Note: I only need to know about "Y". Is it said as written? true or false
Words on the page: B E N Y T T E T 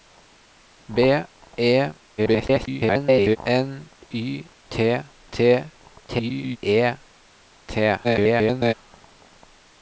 true